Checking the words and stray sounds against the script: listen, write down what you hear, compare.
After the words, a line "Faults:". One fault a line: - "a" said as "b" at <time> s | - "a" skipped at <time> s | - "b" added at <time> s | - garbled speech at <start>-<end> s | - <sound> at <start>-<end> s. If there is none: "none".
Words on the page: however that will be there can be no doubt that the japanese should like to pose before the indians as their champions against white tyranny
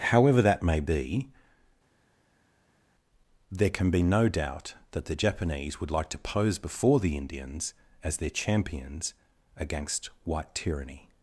however that may be there can be no doubt that the japanese would like to pose before the indians as their champions against white tyranny
Faults:
- "will" said as "may" at 0.6 s
- "should" said as "would" at 5.8 s